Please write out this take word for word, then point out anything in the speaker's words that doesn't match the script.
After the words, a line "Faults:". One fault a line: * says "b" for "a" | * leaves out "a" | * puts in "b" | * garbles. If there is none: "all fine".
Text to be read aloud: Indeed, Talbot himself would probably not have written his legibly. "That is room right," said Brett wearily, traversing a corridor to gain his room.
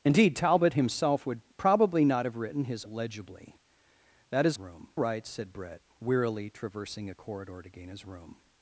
Indeed, Talbot himself would probably not have written his legibly. "That is room right," said Brett wearily, traversing a corridor to gain his room.
Faults:
all fine